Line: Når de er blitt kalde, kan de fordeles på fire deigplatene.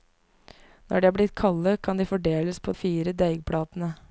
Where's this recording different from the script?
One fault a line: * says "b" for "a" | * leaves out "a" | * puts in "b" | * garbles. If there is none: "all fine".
all fine